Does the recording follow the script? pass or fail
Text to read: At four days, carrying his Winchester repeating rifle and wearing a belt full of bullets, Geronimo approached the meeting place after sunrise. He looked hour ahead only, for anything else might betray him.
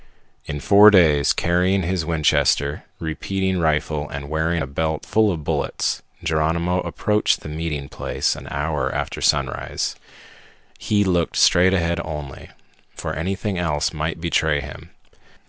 fail